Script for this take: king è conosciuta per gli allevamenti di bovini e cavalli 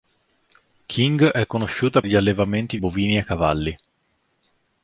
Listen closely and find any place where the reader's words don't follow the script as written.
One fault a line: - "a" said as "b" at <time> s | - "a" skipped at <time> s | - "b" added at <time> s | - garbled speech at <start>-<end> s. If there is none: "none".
- "per" skipped at 2.0 s
- "di" skipped at 2.8 s